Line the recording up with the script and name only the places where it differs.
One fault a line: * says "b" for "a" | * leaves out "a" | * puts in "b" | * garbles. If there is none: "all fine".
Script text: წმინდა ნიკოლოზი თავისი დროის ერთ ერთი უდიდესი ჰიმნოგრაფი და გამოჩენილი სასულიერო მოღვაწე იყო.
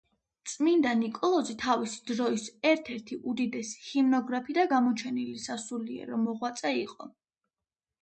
all fine